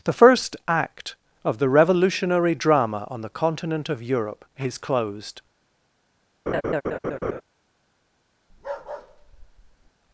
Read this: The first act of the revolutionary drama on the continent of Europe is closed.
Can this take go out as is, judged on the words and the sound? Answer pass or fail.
fail